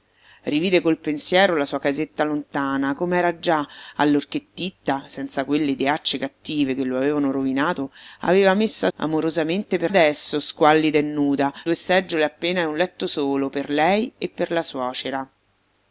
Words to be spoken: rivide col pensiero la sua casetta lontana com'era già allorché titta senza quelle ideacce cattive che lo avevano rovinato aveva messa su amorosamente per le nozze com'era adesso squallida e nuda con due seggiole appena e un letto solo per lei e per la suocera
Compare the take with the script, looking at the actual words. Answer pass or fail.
fail